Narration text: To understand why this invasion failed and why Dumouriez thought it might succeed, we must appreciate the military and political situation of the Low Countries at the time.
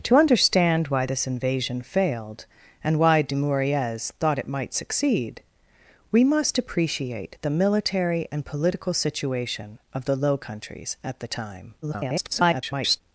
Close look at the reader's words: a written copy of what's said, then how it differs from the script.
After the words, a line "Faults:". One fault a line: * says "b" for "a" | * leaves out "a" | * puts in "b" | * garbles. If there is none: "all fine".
To understand why this invasion failed and why Dumouriez thought it might succeed, we must appreciate the military and political situation of the Low Countries at the time. [garbled]
Faults:
* garbles